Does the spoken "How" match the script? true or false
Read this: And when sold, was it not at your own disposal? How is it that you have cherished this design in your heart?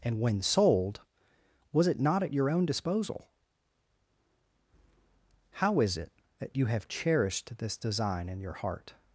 true